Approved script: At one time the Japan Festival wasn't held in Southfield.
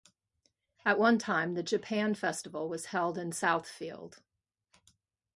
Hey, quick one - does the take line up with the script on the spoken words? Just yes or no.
no